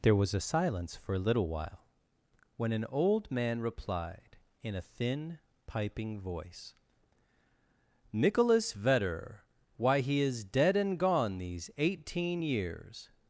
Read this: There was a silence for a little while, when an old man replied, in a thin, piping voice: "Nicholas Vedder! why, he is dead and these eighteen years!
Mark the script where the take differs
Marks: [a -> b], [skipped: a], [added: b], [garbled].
There was a silence for a little while, when an old man replied, in a thin, piping voice: "Nicholas Vedder! why, he is dead and [added: gone] these eighteen years!